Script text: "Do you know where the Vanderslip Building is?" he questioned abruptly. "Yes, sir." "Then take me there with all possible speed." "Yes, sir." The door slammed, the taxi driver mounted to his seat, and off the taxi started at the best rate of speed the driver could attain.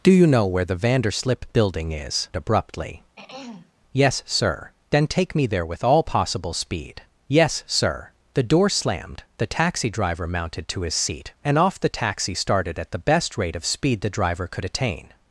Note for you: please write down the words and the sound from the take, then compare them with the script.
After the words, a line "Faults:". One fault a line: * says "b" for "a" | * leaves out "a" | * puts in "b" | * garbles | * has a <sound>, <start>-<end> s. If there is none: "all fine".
"Do you know where the Vanderslip Building is?" abruptly. "Yes, sir." "Then take me there with all possible speed." "Yes, sir." The door slammed, the taxi driver mounted to his seat, and off the taxi started at the best rate of speed the driver could attain.
Faults:
* leaves out "he questioned"
* has a throat clearing, 3.2-3.7 s